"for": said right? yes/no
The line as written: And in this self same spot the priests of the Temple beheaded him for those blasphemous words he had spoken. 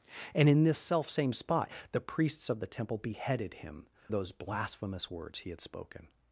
no